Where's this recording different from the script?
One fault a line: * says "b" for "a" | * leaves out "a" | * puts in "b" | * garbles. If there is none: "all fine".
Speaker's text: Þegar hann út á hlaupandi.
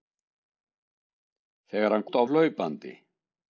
all fine